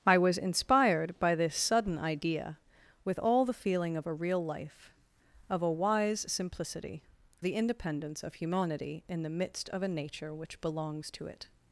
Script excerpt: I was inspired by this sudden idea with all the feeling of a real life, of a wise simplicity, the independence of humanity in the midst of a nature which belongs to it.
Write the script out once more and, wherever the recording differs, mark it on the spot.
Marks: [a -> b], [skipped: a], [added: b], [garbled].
I was inspired by this sudden idea with all the feeling of a real life, of a wise simplicity, the independence of humanity in the midst of a nature which belongs to it.